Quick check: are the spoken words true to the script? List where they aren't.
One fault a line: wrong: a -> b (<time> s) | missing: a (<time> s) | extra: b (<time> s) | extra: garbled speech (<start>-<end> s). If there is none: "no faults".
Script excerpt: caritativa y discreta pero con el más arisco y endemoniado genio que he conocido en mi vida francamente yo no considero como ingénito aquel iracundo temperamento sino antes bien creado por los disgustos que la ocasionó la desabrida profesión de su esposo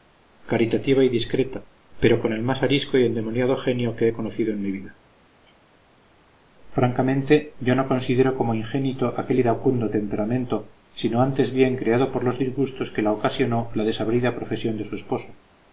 no faults